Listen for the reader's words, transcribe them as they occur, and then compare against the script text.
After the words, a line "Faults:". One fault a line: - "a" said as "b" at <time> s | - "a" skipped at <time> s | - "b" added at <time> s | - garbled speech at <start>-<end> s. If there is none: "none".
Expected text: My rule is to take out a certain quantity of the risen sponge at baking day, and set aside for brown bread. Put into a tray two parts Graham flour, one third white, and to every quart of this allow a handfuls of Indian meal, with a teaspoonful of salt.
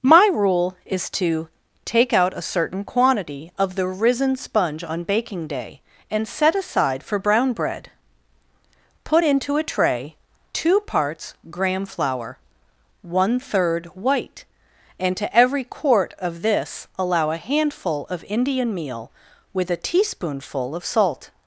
My rule is to take out a certain quantity of the risen sponge on baking day, and set aside for brown bread. Put into a tray two parts Graham flour, one third white, and to every quart of this allow a handful of Indian meal, with a teaspoonful of salt.
Faults:
- "at" said as "on" at 4.8 s
- "handfuls" said as "handful" at 17.4 s